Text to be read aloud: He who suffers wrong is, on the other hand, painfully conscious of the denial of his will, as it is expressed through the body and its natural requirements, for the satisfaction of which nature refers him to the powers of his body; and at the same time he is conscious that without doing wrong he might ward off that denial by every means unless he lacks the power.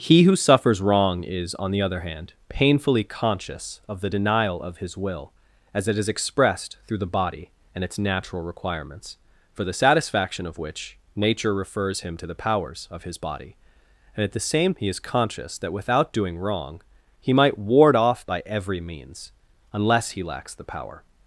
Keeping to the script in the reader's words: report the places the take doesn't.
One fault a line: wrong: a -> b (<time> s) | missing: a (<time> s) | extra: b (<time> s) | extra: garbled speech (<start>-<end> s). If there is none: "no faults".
missing: time (14.7 s)
missing: that denial (18.2 s)